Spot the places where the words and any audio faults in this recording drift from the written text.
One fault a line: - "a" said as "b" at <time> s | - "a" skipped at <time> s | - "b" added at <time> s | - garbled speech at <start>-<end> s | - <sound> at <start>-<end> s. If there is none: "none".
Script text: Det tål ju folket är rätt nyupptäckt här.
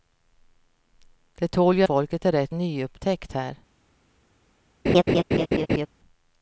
- laugh at 4.9-5.9 s